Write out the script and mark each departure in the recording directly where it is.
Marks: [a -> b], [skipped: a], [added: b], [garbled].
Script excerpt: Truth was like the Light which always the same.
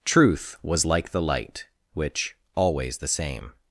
Truth was like the Light which always the same.